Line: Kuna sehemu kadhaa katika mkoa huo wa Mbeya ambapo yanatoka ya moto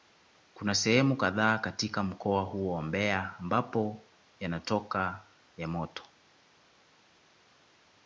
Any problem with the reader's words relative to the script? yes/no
no